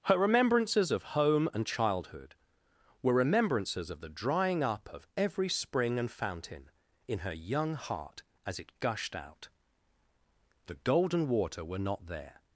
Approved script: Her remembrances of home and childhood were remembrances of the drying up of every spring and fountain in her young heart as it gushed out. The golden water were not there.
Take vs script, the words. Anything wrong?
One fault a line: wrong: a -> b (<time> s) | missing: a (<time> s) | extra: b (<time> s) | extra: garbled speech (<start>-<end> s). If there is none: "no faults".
no faults